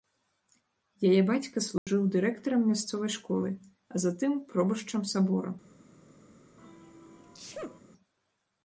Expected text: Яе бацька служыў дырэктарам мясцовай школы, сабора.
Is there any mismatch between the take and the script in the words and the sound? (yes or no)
yes